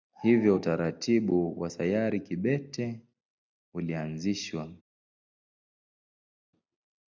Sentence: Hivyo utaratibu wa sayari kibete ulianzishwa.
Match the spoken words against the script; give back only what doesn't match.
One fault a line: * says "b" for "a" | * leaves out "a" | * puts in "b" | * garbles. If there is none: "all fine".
all fine